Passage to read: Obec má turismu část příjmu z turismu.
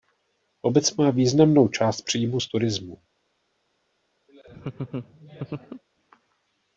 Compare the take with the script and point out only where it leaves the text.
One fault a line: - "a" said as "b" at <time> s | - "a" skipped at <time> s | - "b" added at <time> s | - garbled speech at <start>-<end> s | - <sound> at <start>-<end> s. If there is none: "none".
- "turismu" said as "významnou" at 1.1 s
- laugh at 4.3-5.8 s